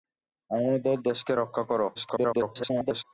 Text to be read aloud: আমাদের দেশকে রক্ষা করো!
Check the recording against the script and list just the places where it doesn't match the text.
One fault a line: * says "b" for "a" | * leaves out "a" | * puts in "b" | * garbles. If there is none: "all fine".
* garbles